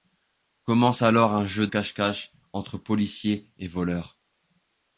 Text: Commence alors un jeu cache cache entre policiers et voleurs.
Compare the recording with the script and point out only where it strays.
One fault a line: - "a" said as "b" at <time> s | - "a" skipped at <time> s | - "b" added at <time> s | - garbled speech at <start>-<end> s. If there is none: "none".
none